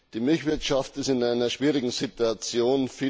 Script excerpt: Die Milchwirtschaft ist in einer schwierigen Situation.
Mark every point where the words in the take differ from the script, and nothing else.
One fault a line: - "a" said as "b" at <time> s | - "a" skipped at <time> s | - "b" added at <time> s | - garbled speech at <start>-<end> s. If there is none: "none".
none